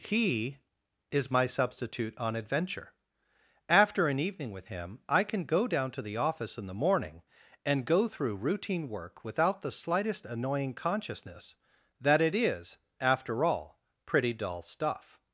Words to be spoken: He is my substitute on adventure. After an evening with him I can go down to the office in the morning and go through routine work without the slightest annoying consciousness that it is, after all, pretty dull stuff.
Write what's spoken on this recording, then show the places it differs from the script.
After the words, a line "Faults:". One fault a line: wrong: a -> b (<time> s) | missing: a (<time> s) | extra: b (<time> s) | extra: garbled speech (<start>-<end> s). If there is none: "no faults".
He is my substitute on adventure. After an evening with him I can go down to the office in the morning and go through routine work without the slightest annoying consciousness that it is, after all, pretty dull stuff.
Faults:
no faults